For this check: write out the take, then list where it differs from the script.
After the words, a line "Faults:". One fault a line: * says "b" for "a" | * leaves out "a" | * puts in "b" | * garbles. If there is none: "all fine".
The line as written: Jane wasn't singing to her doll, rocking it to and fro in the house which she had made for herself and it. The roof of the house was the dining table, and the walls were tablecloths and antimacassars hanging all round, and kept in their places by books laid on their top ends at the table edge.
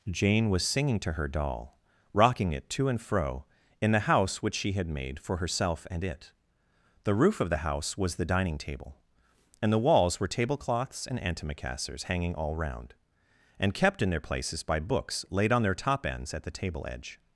Jane was singing to her doll, rocking it to and fro in the house which she had made for herself and it. The roof of the house was the dining table, and the walls were tablecloths and antimacassars hanging all round, and kept in their places by books laid on their top ends at the table edge.
Faults:
* says "was" for "wasn't"